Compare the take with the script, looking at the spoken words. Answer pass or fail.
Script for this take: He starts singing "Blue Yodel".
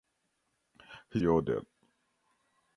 fail